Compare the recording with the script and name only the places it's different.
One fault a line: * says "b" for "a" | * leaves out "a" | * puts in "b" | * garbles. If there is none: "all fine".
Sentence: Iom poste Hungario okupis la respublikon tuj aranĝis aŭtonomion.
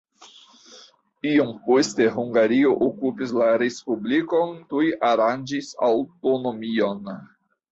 all fine